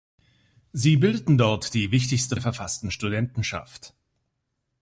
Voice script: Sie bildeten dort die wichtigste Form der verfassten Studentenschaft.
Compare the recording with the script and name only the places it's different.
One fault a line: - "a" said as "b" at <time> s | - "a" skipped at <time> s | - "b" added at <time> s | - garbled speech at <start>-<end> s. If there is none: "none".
- "Form" skipped at 2.4 s